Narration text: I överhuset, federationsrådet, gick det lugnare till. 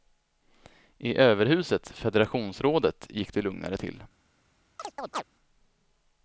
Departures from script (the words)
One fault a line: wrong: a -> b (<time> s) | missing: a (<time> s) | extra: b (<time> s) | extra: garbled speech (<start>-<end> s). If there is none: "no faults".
no faults